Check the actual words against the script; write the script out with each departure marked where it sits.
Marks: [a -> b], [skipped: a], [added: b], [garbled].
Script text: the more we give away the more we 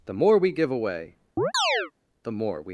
the more we give away the more we